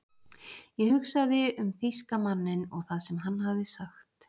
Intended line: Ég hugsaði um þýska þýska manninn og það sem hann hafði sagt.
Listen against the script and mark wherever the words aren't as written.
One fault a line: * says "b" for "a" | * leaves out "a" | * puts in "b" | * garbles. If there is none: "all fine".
* leaves out "þýska"